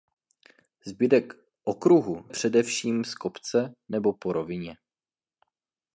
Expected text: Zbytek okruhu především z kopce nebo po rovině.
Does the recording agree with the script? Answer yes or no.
yes